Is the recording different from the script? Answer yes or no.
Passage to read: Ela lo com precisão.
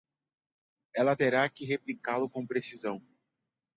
yes